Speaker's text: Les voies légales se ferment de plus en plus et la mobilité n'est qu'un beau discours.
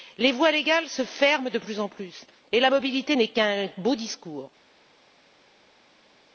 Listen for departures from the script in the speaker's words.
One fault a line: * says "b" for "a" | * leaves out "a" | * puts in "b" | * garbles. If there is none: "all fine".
all fine